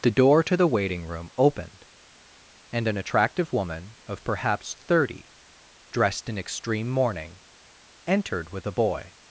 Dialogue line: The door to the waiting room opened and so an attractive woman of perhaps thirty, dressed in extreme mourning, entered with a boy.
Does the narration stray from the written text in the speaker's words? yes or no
yes